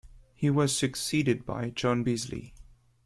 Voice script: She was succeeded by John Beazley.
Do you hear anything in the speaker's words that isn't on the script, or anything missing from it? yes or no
yes